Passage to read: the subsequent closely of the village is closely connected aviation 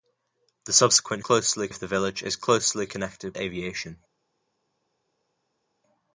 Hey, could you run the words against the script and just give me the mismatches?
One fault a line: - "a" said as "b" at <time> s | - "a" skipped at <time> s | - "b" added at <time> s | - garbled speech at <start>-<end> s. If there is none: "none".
none